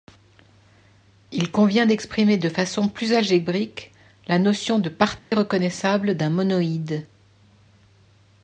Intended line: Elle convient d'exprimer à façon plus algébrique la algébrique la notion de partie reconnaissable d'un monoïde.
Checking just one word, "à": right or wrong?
wrong